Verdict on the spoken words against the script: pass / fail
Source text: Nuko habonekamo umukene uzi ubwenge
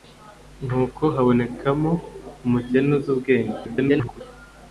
fail